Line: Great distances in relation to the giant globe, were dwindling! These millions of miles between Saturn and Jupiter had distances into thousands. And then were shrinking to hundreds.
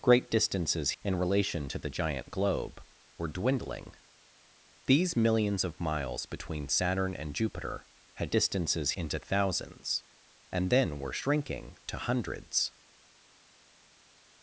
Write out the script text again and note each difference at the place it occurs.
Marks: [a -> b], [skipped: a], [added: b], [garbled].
Great distances in relation to the giant globe, were dwindling! These millions of miles between Saturn and Jupiter had distances into thousands. And then were shrinking to hundreds.